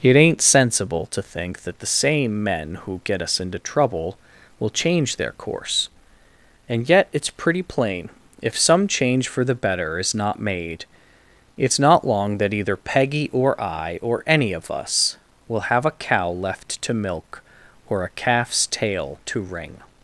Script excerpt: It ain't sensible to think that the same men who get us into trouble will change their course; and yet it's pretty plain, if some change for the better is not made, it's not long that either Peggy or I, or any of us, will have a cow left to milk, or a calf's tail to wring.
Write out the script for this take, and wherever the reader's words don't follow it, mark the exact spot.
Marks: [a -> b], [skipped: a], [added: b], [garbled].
It ain't sensible to think that the same men who get us into trouble will change their course; and yet it's pretty plain, if some change for the better is not made, it's not long that either Peggy or I, or any of us, will have a cow left to milk, or a calf's tail to wring.